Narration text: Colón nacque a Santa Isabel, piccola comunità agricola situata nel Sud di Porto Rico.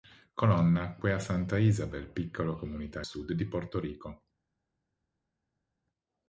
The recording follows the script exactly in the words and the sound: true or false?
false